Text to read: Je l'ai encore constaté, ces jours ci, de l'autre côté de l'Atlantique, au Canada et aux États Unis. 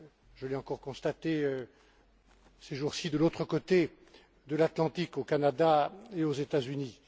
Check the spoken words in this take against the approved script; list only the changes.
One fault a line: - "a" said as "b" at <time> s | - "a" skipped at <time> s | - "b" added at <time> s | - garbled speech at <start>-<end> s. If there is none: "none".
none